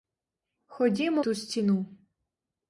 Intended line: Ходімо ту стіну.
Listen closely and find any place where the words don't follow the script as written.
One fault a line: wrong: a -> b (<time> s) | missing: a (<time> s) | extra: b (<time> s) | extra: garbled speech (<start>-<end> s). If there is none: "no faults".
no faults